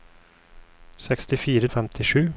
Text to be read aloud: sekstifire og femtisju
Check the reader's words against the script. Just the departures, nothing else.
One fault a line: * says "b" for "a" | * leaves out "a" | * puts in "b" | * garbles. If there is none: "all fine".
all fine